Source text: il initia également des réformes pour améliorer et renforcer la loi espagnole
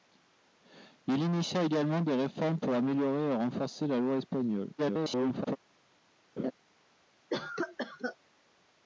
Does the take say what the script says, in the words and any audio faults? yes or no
no